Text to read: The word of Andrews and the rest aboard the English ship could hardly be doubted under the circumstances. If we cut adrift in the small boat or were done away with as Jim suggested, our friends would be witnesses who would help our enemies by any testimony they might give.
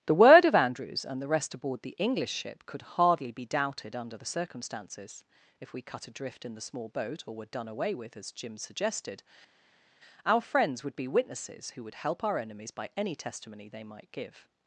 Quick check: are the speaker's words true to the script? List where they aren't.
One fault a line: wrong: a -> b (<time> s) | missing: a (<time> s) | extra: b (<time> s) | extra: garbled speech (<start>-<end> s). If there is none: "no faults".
no faults